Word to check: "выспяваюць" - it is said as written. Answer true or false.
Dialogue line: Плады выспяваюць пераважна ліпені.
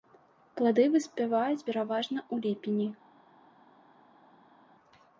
true